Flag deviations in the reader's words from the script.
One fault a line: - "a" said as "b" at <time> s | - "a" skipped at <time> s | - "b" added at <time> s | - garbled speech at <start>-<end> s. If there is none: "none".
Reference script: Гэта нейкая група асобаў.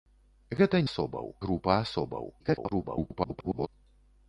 - "нейкая" said as "асобаў" at 0.9 s
- garbled speech at 2.4-3.7 s